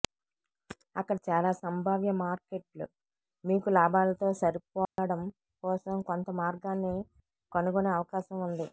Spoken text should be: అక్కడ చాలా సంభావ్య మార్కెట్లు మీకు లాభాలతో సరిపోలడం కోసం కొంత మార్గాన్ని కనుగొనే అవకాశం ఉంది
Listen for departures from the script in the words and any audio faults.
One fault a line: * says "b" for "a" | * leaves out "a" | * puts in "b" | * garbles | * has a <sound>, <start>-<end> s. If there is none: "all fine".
* has a dropout, 4.9-5.0 s